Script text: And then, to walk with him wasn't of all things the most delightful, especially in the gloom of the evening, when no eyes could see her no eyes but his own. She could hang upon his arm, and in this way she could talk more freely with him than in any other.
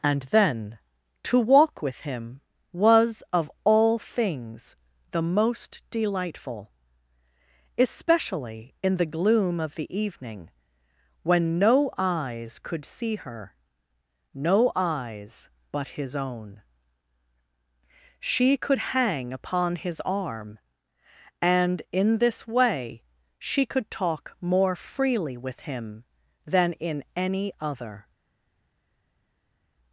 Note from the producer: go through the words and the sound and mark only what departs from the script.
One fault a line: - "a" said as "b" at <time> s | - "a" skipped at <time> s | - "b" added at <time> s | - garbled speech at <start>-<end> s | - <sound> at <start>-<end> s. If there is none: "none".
- "wasn't" said as "was" at 2.7 s